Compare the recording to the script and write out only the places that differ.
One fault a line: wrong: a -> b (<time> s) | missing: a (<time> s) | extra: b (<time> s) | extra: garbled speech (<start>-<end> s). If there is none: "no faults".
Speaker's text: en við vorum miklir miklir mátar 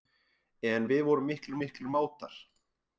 no faults